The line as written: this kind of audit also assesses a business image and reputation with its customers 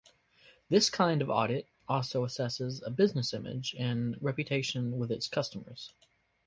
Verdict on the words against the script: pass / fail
pass